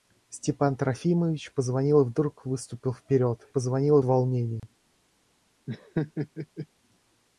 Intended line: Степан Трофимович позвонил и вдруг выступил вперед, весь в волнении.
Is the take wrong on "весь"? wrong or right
wrong